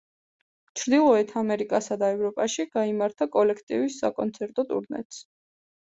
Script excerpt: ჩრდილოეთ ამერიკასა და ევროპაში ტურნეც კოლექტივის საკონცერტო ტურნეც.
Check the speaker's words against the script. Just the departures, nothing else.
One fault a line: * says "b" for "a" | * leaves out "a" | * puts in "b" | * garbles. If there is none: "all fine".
* says "გაიმართა" for "ტურნეც"